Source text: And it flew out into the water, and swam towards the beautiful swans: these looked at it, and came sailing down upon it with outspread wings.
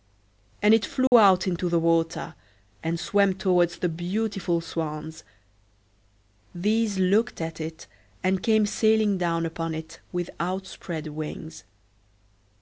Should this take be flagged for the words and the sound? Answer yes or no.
yes